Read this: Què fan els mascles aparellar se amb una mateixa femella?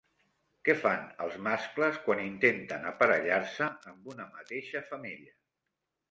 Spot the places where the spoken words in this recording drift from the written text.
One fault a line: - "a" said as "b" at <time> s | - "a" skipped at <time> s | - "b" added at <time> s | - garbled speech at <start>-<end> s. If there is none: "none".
- "quan intenten" added at 2.0 s